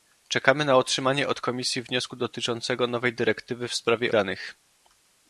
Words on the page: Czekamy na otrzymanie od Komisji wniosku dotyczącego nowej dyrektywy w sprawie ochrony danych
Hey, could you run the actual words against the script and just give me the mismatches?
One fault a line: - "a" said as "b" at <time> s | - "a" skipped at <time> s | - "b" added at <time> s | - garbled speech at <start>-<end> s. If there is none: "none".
- "ochrony" skipped at 4.1 s